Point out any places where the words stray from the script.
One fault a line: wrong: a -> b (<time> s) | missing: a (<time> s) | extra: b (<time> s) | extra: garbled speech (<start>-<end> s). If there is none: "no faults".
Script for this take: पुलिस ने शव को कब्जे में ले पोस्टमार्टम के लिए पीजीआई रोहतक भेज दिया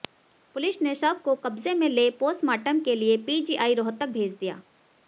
no faults